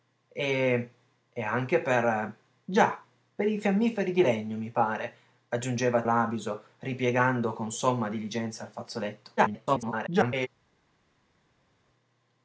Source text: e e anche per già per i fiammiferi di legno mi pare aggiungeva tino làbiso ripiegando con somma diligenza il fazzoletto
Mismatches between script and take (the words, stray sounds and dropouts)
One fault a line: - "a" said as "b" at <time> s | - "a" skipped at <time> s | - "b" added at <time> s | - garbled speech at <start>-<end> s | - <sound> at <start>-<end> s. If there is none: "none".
- "tino" skipped at 6.0 s
- garbled speech at 9.4-10.5 s